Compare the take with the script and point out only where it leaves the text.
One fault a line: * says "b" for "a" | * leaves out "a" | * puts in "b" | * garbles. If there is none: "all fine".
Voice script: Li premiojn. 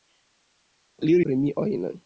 all fine